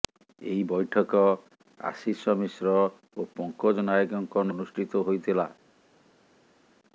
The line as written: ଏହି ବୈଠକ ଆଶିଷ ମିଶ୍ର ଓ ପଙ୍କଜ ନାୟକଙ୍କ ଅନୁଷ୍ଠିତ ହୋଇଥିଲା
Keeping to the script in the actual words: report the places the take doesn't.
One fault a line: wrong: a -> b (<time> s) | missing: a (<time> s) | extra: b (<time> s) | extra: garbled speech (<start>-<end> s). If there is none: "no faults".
no faults